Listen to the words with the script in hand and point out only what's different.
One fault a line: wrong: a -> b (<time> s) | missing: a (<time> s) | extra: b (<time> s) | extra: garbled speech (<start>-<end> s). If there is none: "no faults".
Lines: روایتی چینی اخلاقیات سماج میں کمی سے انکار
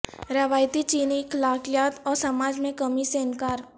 extra: اور (2.0 s)